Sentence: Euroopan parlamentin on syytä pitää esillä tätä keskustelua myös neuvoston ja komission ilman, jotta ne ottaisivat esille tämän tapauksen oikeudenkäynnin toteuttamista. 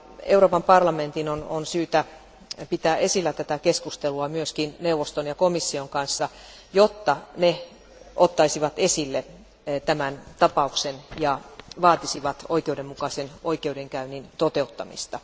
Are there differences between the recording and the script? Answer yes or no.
yes